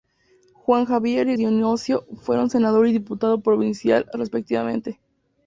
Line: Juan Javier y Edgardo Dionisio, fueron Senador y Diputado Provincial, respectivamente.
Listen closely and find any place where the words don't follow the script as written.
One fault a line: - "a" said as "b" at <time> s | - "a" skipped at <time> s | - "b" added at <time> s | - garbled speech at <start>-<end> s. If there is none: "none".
- "Edgardo" skipped at 1.3 s